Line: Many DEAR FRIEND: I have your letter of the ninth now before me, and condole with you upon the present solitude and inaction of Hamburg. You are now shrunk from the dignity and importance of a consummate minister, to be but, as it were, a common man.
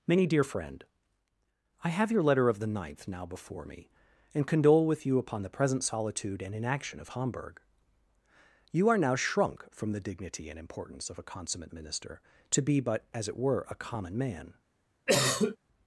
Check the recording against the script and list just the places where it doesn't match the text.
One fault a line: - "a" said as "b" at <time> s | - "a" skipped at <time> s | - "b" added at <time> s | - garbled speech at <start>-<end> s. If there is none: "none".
none